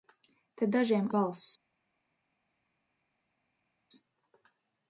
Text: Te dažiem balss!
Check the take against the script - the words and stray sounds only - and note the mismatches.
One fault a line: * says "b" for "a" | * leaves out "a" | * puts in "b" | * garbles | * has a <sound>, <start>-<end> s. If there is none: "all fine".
all fine